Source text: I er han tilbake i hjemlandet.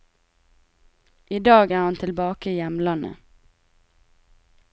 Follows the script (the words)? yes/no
no